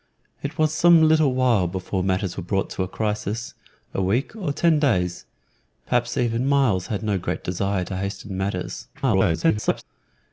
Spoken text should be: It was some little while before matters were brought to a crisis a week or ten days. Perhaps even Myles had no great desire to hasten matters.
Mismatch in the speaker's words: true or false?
true